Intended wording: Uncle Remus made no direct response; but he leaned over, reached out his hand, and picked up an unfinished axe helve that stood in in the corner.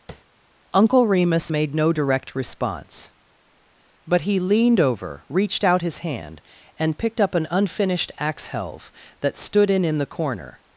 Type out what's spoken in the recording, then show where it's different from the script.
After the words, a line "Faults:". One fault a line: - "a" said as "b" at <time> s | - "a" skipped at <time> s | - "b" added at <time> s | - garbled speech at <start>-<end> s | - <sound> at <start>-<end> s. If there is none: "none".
Uncle Remus made no direct response; but he leaned over, reached out his hand, and picked up an unfinished axe helve that stood in in the corner.
Faults:
- tap at 0.1-0.2 s